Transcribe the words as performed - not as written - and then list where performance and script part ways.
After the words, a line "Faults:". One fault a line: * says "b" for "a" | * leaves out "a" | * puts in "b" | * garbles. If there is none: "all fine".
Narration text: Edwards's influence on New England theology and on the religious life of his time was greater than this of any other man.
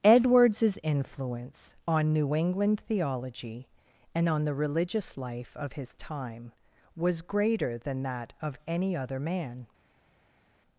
Edwards's influence on New England theology and on the religious life of his time was greater than that of any other man.
Faults:
* says "that" for "this"